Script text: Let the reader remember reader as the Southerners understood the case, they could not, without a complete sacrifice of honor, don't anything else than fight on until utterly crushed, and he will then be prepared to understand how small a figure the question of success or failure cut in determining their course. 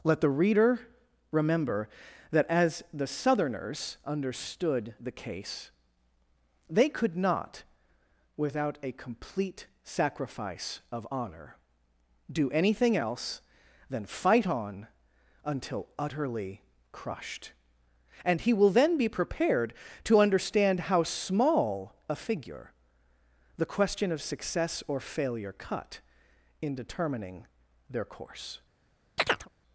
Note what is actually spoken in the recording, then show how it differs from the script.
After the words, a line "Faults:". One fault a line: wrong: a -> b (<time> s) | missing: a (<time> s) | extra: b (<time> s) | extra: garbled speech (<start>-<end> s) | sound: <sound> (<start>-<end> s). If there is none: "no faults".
Let the reader remember that as the Southerners understood the case, they could not, without a complete sacrifice of honor, do anything else than fight on until utterly crushed, and he will then be prepared to understand how small a figure the question of success or failure cut in determining their course.
Faults:
wrong: reader -> that (2.3 s)
wrong: don't -> do (12.3 s)
sound: chirp (29.2-29.5 s)